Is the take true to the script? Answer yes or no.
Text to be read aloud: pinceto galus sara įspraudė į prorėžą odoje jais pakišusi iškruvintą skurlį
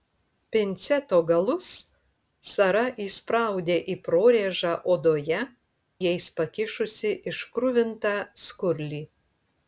yes